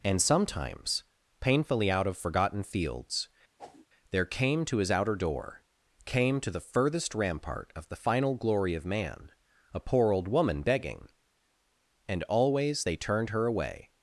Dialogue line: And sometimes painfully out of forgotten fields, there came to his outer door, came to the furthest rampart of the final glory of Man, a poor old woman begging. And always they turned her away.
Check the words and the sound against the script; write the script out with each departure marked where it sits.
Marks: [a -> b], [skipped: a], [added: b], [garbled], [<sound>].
And sometimes painfully out of forgotten fields, [whoosh] there came to his outer door, came to the furthest rampart of the final glory of Man, a poor old woman begging. And always they turned her away.